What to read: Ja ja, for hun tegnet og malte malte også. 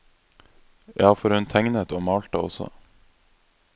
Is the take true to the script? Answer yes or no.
no